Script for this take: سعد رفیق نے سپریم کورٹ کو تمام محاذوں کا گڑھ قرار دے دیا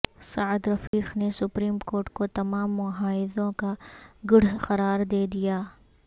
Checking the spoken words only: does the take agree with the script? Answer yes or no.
yes